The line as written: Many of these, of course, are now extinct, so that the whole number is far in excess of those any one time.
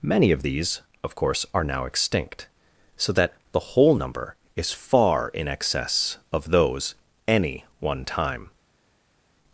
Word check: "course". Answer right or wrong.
right